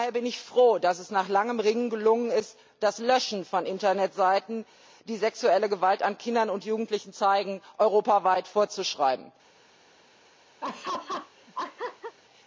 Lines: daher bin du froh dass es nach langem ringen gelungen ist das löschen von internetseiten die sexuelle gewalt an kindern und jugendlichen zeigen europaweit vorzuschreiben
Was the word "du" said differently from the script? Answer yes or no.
yes